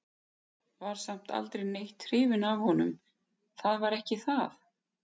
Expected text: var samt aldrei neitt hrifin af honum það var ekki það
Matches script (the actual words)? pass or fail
pass